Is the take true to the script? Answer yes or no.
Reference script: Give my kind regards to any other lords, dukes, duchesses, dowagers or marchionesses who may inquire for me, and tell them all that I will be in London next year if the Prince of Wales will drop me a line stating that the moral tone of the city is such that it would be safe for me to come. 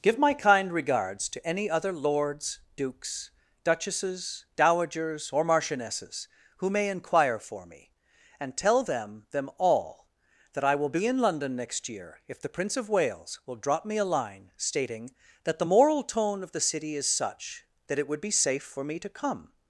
no